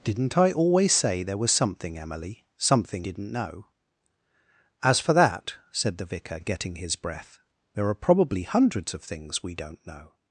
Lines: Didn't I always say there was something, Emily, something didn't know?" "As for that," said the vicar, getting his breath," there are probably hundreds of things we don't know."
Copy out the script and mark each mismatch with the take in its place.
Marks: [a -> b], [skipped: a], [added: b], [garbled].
Didn't I always say there was something, Emily, something didn't know?" "As for that," said the vicar, getting his breath," there are probably hundreds of things we don't know."